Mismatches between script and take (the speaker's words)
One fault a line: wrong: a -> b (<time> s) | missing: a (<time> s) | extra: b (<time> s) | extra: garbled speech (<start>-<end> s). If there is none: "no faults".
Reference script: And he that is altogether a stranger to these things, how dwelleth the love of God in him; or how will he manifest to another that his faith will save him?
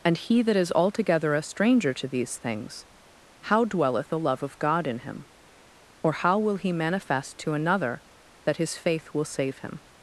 no faults